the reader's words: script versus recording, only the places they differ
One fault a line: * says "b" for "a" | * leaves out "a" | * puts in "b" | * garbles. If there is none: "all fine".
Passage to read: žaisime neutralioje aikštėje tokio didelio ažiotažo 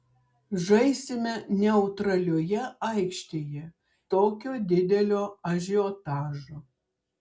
all fine